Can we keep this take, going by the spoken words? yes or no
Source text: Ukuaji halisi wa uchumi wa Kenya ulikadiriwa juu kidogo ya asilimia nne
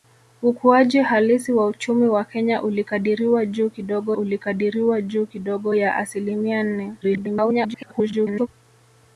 no